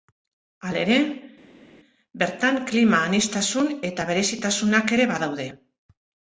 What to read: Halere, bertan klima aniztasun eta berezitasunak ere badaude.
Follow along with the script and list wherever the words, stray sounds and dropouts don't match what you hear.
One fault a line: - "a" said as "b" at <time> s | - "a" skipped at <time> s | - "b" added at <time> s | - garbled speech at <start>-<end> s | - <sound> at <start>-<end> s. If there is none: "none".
none